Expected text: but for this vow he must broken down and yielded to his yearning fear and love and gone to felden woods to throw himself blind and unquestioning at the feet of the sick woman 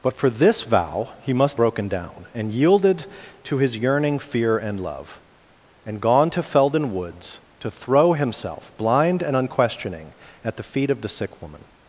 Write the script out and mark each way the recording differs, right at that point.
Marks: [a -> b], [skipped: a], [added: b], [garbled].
but for this vow he must broken down and yielded to his yearning fear and love and gone to felden woods to throw himself blind and unquestioning at the feet of the sick woman